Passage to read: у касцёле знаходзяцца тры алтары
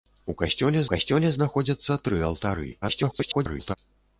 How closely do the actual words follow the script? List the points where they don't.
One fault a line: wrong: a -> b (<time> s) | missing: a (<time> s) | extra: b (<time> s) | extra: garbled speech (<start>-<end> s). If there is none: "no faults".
extra: касцёле (0.9 s)
extra: garbled speech (2.8-3.8 s)